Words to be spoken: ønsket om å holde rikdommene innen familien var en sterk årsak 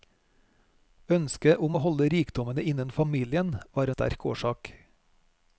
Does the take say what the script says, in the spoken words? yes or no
no